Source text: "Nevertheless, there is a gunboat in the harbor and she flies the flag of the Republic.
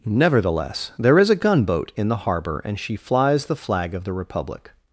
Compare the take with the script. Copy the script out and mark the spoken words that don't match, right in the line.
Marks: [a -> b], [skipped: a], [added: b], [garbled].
"Nevertheless, there is a gunboat in the harbor and she flies the flag of the Republic.